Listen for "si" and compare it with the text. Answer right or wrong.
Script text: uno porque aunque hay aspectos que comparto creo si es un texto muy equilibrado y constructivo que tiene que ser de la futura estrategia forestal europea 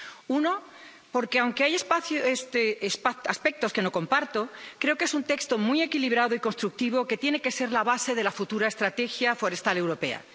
wrong